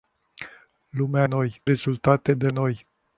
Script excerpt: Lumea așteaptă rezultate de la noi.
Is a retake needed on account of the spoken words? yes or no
yes